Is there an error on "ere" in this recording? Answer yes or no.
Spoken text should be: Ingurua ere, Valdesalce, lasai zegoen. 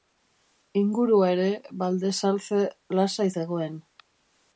no